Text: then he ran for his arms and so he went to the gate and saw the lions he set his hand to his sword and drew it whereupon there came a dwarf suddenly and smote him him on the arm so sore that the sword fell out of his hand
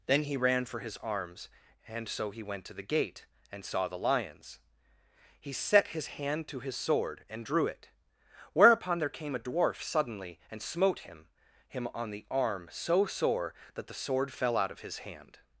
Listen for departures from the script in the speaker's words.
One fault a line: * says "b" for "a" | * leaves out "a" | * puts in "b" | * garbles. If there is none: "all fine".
all fine